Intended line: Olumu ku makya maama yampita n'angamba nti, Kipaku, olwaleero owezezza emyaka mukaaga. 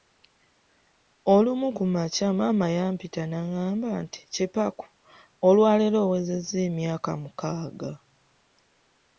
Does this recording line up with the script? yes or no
yes